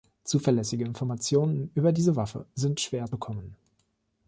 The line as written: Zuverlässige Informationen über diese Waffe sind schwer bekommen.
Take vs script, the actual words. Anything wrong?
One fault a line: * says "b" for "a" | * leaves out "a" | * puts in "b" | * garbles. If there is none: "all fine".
all fine